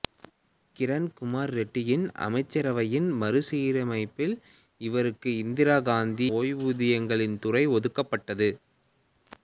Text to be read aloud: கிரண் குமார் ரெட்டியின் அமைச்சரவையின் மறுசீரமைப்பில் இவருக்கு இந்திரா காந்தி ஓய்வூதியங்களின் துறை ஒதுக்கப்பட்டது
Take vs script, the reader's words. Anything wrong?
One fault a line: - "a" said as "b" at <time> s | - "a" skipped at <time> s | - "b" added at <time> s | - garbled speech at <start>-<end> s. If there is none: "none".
none